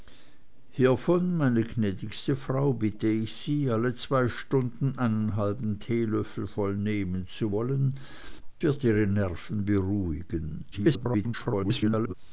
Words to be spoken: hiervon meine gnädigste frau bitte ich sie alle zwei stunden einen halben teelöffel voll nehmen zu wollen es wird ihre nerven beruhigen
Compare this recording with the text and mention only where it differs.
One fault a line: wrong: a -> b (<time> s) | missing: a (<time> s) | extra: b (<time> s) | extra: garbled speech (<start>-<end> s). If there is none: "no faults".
missing: es (8.0 s)
extra: garbled speech (10.7-12.1 s)